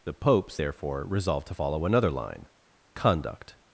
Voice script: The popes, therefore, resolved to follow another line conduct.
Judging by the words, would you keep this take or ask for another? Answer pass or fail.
pass